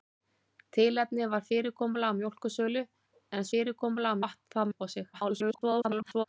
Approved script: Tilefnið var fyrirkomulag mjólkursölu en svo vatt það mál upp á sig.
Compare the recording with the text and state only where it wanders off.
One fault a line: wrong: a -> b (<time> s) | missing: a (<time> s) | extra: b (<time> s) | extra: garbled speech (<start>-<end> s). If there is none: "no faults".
wrong: svo -> fyrirkomulag (3.5 s)
missing: mál (4.7 s)
extra: garbled speech (5.1-6.2 s)